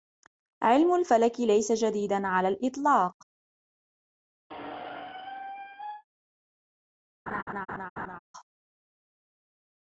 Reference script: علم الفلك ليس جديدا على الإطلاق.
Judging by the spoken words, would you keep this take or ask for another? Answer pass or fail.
pass